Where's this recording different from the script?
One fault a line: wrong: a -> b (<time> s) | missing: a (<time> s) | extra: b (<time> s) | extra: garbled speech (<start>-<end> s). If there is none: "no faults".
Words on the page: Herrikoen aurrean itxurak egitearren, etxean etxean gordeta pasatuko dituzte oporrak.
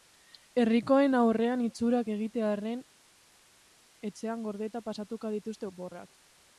missing: etxean (4.5 s)